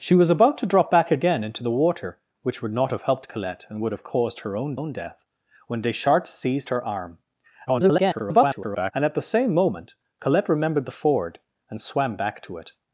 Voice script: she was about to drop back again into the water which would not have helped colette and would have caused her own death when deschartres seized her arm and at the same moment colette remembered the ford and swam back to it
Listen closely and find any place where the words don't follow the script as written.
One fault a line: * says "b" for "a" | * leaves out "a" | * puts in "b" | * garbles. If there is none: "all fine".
* puts in "own"
* garbles